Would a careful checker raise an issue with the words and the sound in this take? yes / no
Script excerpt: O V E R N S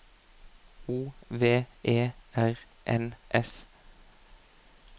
no